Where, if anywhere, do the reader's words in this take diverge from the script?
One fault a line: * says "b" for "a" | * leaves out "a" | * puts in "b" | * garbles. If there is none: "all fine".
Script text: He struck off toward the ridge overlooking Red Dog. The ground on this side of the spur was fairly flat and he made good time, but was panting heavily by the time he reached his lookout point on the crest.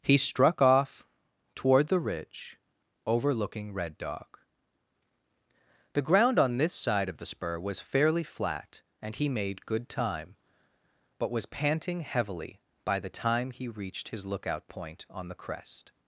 all fine